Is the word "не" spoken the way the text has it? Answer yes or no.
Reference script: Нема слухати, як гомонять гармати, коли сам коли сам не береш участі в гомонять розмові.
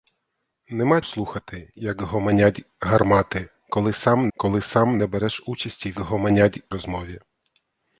yes